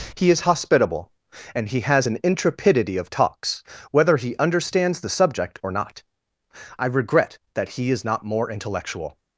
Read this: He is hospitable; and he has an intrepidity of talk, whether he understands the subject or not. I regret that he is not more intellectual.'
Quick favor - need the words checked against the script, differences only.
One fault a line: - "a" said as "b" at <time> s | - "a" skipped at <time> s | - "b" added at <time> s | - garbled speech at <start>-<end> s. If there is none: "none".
- "talk" said as "talks" at 3.1 s